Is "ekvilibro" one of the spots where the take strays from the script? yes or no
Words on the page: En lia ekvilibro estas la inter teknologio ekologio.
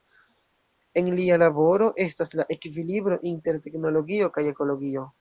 yes